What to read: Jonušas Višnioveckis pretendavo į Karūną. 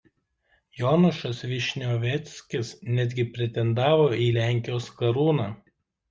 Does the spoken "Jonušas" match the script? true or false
true